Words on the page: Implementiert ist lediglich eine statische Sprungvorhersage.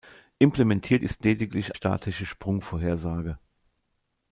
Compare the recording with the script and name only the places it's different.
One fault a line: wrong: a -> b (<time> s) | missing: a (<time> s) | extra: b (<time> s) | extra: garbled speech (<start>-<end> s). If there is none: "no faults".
missing: eine (1.8 s)